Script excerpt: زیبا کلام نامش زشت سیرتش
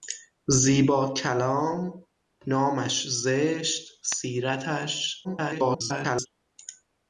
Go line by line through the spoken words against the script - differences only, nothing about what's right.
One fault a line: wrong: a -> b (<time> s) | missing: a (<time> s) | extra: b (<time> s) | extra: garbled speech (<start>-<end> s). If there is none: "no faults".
extra: garbled speech (5.2-6.3 s)